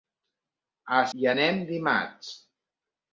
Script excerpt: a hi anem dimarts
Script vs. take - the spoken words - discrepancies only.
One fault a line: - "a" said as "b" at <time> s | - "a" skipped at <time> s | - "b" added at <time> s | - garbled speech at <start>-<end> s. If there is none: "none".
none